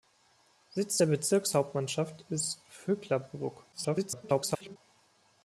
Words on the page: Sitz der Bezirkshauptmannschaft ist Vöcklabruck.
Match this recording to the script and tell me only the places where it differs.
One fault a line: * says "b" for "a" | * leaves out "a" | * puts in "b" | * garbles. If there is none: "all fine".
* garbles